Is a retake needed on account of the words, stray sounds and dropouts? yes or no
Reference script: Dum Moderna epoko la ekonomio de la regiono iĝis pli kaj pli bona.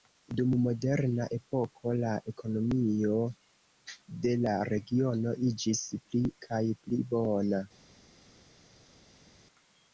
no